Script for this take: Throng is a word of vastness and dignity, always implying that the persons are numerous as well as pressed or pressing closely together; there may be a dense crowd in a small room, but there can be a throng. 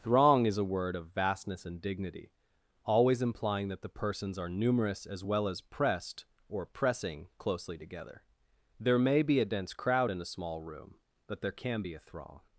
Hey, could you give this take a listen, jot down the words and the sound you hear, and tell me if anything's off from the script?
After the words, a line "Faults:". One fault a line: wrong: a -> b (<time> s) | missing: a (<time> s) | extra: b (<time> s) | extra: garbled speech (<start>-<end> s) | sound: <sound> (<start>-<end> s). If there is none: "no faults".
Throng is a word of vastness and dignity, always implying that the persons are numerous as well as pressed or pressing closely together; there may be a dense crowd in a small room, but there can be a throng.
Faults:
no faults